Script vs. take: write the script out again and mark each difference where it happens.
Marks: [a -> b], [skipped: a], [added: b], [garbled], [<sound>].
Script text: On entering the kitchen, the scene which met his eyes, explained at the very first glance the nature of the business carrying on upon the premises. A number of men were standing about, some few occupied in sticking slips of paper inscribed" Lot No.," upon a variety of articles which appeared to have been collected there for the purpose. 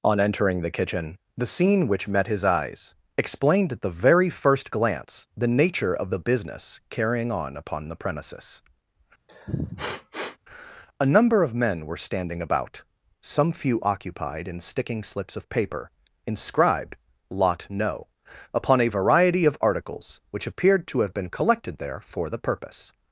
On entering the kitchen, the scene which met his eyes, explained at the very first glance the nature of the business carrying on upon the premises. [sniff] A number of men were standing about, some few occupied in sticking slips of paper inscribed" Lot No.," upon a variety of articles which appeared to have been collected there for the purpose.